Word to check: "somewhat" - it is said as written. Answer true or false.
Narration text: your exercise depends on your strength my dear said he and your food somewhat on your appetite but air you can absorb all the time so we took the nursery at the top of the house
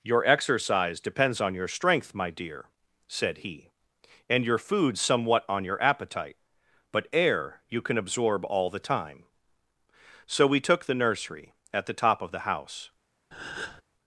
true